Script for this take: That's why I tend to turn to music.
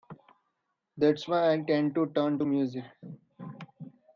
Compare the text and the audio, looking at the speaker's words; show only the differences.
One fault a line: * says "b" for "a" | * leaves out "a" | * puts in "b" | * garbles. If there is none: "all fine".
all fine